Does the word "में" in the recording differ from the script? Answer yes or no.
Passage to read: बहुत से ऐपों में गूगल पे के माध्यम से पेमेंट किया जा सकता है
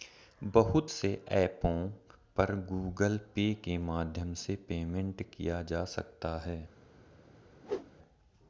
yes